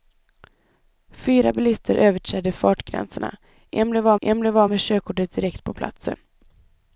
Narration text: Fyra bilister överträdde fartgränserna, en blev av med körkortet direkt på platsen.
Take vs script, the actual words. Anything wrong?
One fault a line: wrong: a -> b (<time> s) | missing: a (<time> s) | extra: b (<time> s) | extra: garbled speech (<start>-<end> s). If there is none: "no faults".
extra: en blev av (4.2 s)